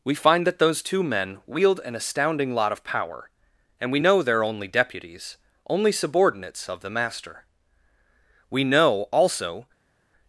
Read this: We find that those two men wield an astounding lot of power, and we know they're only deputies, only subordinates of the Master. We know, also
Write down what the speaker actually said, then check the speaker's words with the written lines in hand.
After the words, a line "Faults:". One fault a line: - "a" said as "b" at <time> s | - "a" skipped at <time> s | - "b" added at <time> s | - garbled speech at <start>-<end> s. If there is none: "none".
We find that those two men wield an astounding lot of power, and we know they're only deputies, only subordinates of the Master. We know, also
Faults:
none